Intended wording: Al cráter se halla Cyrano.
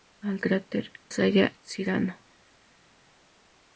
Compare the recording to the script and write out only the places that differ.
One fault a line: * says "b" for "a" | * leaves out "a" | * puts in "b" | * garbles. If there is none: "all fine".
all fine